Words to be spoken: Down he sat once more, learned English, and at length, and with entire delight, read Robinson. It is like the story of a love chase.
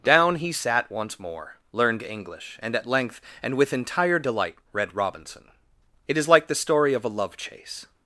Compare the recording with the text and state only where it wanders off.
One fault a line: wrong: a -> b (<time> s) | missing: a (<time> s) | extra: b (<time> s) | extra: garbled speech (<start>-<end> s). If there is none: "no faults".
no faults